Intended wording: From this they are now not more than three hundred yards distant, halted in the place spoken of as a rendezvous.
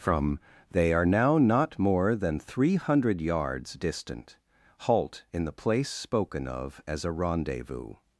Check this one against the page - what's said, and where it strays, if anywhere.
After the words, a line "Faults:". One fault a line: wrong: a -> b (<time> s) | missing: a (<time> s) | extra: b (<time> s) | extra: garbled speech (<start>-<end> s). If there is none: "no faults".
From they are now not more than three hundred yards distant, halt in the place spoken of as a rendezvous.
Faults:
missing: this (0.4 s)
wrong: halted -> halt (4.8 s)